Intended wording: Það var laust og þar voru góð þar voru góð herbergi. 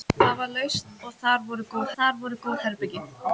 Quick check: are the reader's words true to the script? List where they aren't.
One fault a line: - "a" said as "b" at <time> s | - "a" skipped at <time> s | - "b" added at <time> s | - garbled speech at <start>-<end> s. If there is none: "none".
none